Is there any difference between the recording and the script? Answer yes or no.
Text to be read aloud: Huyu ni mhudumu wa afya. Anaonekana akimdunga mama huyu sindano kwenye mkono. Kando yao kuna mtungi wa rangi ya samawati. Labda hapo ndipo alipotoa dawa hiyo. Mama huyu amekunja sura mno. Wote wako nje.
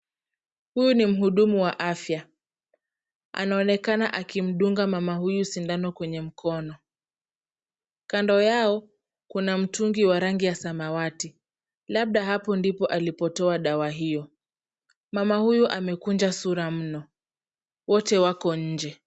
no